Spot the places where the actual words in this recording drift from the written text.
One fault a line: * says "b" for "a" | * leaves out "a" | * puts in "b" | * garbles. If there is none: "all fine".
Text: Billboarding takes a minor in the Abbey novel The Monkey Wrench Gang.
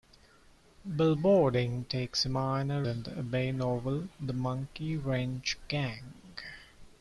all fine